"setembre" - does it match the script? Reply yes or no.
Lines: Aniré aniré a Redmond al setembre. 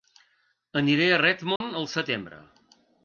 yes